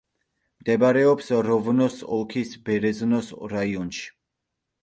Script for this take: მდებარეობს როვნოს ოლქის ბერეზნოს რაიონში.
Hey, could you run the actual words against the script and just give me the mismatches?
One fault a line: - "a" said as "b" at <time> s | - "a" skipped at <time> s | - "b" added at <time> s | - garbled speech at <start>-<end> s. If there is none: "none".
none